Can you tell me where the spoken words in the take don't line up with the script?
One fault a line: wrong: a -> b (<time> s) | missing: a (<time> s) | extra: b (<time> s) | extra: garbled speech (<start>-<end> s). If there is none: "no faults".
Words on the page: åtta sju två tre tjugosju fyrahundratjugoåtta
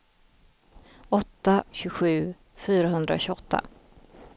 missing: sju två tre (1.6 s)